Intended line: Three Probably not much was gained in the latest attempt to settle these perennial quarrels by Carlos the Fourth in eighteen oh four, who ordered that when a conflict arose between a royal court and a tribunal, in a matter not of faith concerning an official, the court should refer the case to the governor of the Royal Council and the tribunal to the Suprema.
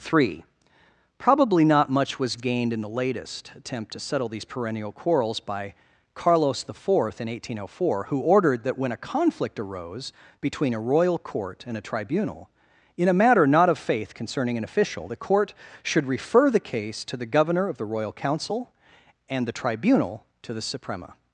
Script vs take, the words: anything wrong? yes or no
no